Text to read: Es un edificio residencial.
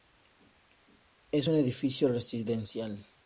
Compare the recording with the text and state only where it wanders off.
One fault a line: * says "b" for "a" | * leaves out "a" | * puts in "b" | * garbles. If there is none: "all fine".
all fine